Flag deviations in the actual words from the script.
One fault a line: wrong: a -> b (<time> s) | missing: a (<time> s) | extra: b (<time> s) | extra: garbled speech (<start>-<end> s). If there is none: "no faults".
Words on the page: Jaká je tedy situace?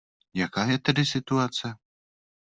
no faults